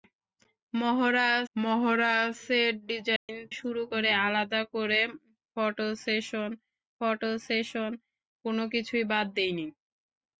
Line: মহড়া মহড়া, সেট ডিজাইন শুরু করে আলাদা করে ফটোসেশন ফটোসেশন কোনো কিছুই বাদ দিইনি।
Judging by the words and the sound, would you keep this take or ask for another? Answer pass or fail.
fail